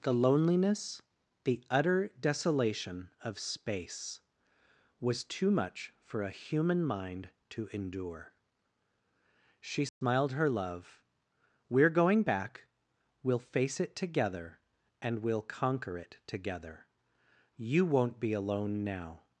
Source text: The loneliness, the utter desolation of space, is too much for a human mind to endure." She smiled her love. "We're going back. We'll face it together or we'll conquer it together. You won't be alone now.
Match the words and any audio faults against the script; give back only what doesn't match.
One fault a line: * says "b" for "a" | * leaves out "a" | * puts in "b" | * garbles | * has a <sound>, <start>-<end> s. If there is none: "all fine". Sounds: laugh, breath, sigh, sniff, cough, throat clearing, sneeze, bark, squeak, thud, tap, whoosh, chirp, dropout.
* says "was" for "is"
* has a dropout, 9.9-10.0 s
* says "and" for "or"